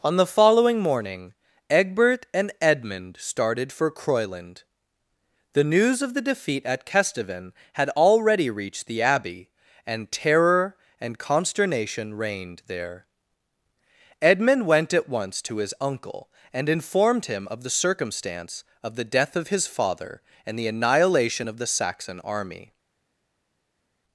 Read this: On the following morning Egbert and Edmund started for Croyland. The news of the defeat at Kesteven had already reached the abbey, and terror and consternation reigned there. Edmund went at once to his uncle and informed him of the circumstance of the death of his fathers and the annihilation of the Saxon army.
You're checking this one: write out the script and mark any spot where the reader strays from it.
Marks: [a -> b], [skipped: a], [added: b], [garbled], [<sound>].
On the following morning Egbert and Edmund started for Croyland. The news of the defeat at Kesteven had already reached the abbey, and terror and consternation reigned there. Edmund went at once to his uncle and informed him of the circumstance of the death of his [fathers -> father] and the annihilation of the Saxon army.